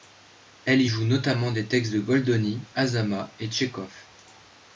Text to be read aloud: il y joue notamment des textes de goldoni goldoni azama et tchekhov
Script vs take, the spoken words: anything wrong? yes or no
yes